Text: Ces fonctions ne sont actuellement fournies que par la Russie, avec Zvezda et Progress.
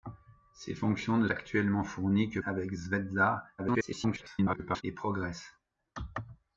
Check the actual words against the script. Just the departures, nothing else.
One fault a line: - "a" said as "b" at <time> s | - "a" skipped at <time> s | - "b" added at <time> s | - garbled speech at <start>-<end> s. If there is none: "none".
- "sont" skipped at 1.3 s
- "par la Russie" skipped at 2.4 s
- garbled speech at 3.6-4.8 s